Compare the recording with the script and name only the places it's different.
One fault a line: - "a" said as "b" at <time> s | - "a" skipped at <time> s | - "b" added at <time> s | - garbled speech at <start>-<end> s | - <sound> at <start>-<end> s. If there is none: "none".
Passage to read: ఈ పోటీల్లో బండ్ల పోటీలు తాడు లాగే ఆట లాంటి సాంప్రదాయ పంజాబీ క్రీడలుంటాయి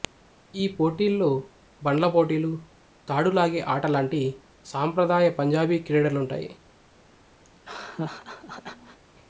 - laugh at 7.4-9.0 s